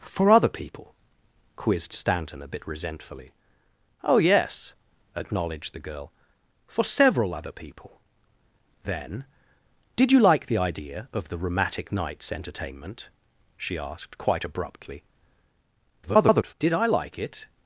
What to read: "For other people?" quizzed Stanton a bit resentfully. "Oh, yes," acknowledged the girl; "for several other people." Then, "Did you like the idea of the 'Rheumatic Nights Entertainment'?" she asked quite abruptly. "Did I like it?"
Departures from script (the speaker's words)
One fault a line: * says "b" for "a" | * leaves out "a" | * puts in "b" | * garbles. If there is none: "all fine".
* garbles